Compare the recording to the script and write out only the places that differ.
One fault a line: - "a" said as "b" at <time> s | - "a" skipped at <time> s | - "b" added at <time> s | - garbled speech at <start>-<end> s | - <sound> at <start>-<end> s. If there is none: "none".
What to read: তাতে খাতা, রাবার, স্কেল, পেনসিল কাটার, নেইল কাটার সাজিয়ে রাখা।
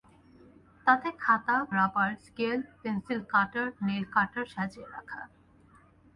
none